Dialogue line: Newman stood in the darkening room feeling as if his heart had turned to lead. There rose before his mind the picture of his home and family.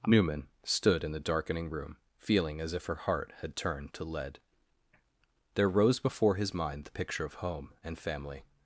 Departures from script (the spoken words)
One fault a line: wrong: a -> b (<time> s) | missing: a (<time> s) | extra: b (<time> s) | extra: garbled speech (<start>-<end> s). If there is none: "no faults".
wrong: his -> her (2.9 s)
missing: his (7.3 s)